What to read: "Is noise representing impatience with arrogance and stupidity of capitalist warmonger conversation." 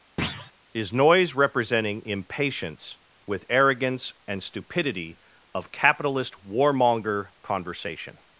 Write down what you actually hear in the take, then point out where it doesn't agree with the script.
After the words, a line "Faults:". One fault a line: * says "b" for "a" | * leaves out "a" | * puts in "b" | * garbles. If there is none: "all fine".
"Is noise representing impatience with arrogance and stupidity of capitalist warmonger conversation."
Faults:
all fine